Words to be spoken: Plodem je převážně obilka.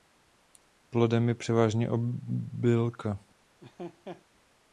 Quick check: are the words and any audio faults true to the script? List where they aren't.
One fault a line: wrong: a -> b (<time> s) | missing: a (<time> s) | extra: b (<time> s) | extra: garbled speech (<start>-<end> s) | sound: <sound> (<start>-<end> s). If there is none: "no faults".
sound: laugh (3.6-4.3 s)